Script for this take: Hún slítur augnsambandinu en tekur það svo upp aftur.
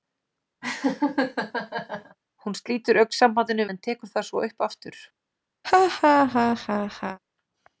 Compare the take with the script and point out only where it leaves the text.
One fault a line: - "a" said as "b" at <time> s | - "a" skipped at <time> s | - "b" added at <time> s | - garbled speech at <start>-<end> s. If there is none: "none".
none